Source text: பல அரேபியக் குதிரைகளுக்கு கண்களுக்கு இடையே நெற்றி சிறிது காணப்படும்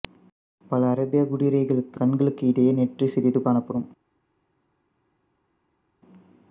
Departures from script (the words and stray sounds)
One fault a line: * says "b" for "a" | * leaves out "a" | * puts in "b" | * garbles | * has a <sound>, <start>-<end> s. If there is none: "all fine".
all fine